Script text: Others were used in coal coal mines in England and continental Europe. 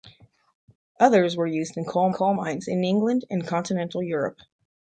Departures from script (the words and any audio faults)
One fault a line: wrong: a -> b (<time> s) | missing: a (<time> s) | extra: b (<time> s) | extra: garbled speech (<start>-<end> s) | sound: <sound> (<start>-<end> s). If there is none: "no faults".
no faults